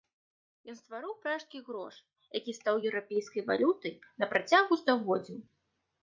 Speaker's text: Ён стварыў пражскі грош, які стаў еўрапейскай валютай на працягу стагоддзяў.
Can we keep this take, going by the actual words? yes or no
yes